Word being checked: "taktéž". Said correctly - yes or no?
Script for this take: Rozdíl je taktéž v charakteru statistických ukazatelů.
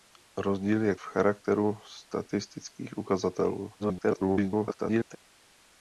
no